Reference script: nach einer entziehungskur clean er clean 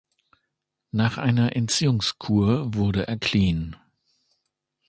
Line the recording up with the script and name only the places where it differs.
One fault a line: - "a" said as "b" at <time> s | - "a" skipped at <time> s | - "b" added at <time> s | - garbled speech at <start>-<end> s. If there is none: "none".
- "clean" said as "wurde" at 2.7 s